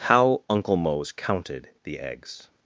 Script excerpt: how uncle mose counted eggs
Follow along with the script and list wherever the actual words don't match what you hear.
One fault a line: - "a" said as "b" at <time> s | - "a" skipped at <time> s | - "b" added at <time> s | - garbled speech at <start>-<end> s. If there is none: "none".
- "the" added at 1.8 s